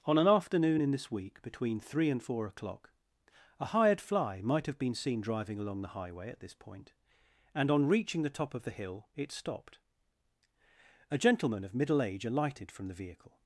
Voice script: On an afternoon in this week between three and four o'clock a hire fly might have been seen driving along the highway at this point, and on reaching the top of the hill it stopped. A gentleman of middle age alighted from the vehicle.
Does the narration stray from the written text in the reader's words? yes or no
yes